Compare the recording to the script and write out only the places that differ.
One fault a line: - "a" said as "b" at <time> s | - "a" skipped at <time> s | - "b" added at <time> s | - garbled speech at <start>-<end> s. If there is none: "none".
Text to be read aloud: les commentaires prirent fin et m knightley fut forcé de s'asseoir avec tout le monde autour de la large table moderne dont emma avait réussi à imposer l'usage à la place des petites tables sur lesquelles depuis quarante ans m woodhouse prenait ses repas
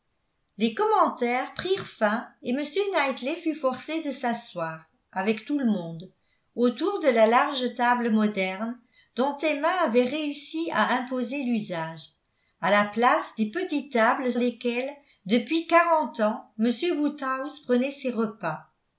- "sur" skipped at 14.3 s